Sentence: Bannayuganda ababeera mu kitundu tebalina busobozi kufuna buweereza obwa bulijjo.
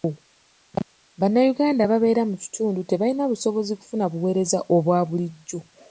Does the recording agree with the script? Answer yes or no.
yes